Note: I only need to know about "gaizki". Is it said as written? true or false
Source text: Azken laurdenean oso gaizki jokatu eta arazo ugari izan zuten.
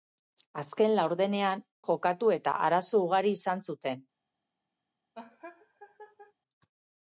false